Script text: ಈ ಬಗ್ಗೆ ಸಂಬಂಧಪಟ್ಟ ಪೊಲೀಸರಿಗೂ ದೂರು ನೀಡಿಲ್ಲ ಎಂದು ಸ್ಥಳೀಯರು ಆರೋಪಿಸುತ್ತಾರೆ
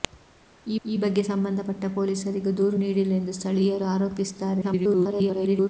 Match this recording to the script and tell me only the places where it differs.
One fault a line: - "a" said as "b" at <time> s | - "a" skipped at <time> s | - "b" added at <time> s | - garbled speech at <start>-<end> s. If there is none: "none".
- "ಈ" added at 0.9 s
- garbled speech at 4.6-5.7 s